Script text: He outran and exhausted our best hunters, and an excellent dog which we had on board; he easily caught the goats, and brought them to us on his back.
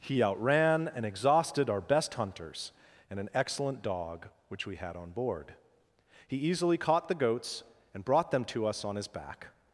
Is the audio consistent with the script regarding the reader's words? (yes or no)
yes